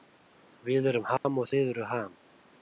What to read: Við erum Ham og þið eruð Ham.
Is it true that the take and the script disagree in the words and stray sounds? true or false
true